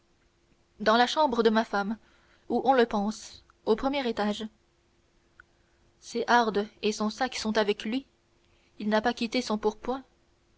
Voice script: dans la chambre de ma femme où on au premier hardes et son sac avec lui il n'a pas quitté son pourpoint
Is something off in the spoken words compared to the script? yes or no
yes